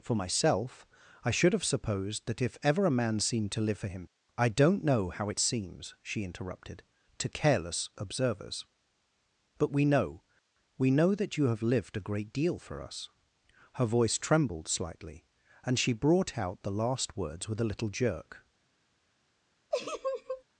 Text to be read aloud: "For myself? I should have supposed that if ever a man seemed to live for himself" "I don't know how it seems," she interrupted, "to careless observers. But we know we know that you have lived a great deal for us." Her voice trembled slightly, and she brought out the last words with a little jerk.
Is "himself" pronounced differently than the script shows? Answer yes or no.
yes